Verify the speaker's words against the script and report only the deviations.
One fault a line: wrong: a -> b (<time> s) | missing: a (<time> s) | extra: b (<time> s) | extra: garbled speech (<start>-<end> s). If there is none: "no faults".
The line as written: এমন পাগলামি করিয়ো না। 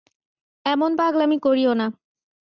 no faults